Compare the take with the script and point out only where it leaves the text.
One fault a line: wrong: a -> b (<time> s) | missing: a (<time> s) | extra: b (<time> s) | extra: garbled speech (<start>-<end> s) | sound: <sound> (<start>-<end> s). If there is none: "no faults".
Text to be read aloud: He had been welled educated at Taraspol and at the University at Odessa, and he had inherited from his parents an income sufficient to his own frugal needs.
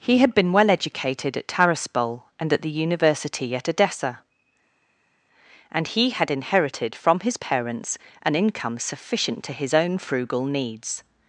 wrong: welled -> well (0.5 s)